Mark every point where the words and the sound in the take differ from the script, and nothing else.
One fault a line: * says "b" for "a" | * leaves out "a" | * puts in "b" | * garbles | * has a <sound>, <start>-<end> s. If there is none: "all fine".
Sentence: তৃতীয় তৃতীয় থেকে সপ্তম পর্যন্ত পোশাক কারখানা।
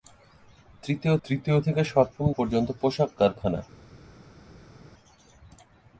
all fine